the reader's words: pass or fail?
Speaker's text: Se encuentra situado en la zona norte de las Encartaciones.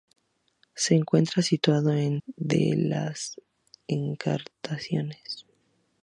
fail